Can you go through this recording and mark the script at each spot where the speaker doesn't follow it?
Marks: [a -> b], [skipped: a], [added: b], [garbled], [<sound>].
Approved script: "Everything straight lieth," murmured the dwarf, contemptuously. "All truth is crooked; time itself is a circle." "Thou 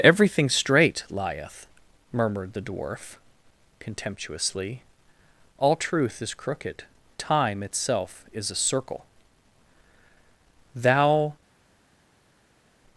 "Everything straight lieth," murmured the dwarf, contemptuously. "All truth is crooked; time itself is a circle." "Thou